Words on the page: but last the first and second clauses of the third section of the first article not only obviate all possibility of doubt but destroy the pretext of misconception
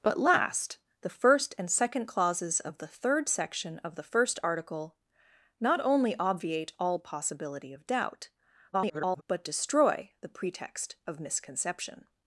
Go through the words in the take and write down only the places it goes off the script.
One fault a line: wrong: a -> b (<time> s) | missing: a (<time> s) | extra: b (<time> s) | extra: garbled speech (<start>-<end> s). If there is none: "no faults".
extra: garbled speech (8.7-9.2 s)